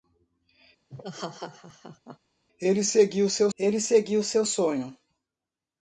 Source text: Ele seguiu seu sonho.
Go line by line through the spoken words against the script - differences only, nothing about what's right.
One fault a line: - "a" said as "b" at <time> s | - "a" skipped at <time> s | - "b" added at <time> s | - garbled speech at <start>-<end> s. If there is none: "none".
- "ele seguiu seu" added at 3.6 s